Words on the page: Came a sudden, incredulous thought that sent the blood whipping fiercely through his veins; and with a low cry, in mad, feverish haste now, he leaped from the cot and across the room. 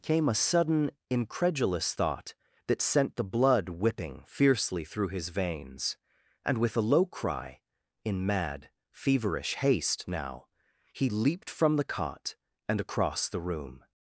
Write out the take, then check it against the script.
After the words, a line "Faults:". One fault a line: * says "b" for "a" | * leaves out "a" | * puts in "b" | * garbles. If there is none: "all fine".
Came a sudden, incredulous thought that sent the blood whipping fiercely through his veins; and with a low cry, in mad, feverish haste now, he leaped from the cot and across the room.
Faults:
all fine